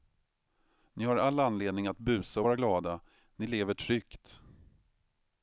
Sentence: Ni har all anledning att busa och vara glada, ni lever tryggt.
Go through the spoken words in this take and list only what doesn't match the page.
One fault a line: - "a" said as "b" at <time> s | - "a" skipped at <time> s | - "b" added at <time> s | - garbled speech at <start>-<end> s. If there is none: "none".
none